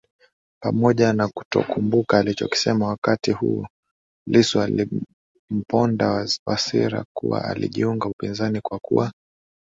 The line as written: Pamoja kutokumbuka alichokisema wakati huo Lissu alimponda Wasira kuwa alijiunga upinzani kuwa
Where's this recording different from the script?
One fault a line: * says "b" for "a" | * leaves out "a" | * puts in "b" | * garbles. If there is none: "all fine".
* puts in "na"
* puts in "kwa"